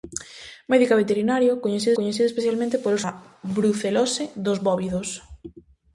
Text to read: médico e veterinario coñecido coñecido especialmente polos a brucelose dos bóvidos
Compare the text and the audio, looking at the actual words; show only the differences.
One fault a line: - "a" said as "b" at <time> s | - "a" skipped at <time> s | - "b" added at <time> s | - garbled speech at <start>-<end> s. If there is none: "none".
none